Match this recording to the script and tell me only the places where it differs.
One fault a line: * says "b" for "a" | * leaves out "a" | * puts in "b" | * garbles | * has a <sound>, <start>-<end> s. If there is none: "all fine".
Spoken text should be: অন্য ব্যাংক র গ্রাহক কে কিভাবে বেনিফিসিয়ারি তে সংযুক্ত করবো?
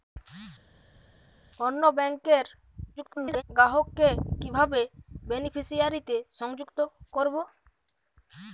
* garbles